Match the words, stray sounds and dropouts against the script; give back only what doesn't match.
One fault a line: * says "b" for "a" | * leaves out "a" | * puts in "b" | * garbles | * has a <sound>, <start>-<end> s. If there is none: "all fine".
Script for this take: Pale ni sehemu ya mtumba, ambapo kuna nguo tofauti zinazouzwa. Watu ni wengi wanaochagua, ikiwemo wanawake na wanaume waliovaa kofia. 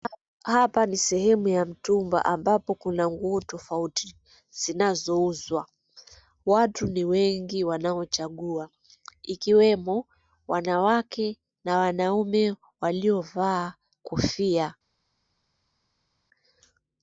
* says "Hapa" for "Pale"